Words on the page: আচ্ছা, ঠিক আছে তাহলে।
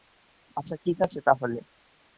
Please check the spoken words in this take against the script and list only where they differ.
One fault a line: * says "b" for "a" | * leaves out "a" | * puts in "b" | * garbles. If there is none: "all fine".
all fine